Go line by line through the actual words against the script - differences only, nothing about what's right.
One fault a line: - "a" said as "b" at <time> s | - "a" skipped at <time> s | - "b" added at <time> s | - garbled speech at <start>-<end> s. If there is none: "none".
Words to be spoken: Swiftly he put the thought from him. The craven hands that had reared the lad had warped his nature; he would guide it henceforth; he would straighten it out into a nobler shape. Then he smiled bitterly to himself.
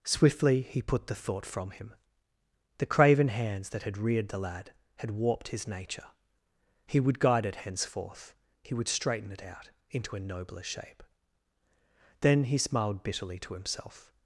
none